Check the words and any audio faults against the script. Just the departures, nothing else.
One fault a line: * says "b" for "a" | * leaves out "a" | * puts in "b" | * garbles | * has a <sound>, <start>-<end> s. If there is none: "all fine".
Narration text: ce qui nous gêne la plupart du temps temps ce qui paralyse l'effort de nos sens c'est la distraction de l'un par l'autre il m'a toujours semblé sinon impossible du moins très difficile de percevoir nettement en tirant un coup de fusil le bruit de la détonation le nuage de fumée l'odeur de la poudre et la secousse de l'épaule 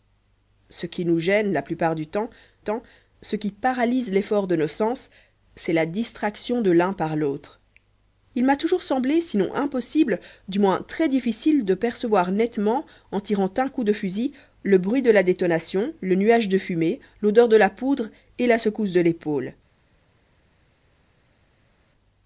all fine